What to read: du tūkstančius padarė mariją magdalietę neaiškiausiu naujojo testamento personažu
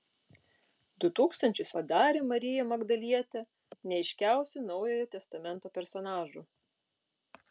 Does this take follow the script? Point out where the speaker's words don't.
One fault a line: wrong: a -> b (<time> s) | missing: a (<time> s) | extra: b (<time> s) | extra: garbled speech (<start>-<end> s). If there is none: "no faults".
no faults